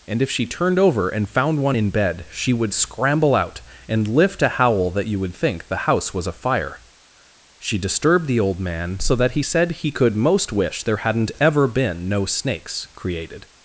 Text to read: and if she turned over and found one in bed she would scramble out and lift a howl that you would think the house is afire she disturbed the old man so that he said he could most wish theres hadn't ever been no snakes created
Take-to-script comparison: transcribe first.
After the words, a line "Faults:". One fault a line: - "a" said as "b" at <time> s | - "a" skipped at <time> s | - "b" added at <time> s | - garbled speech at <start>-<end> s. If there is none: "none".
and if she turned over and found one in bed she would scramble out and lift a howl that you would think the house was afire she disturbed the old man so that he said he could most wish there hadn't ever been no snakes created
Faults:
- "is" said as "was" at 6.1 s
- "theres" said as "there" at 10.8 s